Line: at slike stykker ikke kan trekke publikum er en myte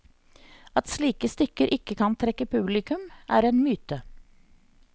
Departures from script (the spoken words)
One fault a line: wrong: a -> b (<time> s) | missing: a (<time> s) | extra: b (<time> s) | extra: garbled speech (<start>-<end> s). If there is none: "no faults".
no faults